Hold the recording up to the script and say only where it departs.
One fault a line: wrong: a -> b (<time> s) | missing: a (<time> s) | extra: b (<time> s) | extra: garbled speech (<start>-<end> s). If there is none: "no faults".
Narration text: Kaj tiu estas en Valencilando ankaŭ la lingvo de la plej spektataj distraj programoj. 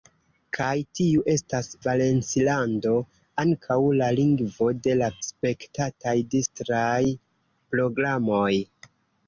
missing: en (1.7 s)
missing: plej (5.1 s)